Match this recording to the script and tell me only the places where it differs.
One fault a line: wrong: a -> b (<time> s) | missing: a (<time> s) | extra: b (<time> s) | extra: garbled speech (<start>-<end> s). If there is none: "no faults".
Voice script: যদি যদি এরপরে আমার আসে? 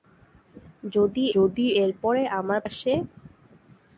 no faults